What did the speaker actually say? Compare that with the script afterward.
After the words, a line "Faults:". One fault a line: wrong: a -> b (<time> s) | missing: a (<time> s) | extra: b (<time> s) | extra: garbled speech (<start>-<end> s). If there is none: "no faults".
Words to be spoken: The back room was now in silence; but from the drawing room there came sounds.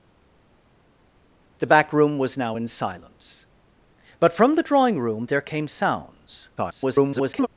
The back room was now in silence; but from the drawing room there came sounds. [garbled]
Faults:
extra: garbled speech (6.6-7.5 s)